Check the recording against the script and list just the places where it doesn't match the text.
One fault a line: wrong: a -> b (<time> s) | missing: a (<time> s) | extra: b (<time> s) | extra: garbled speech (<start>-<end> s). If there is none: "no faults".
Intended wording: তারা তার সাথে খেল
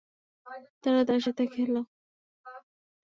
no faults